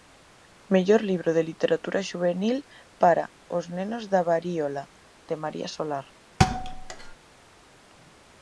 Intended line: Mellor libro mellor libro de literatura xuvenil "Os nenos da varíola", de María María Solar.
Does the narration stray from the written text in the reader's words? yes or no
yes